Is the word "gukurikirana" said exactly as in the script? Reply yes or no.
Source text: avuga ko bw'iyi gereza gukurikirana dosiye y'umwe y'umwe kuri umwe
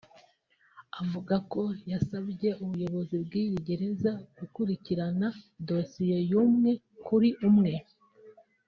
yes